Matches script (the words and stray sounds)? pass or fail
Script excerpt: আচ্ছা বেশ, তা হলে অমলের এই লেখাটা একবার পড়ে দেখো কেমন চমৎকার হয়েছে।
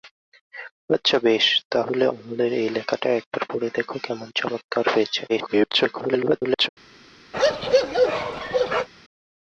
fail